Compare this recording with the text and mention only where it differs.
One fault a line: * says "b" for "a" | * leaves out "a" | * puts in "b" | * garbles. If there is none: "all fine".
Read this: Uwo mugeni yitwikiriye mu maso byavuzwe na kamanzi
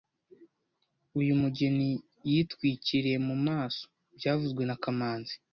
* says "Uyu" for "Uwo"